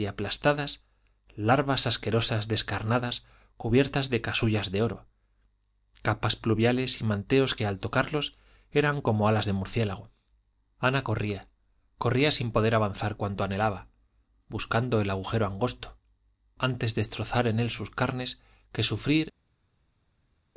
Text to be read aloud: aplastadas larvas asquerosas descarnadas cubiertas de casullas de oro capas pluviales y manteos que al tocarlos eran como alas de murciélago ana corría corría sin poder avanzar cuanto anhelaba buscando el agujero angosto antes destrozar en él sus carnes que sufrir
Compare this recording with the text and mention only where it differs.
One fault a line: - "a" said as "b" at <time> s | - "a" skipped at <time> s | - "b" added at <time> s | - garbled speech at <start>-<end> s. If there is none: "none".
none